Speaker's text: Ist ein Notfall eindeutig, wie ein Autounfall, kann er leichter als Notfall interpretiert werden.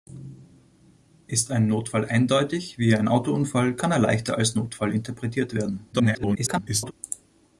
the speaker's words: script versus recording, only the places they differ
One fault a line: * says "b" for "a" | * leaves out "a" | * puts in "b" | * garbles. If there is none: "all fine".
* garbles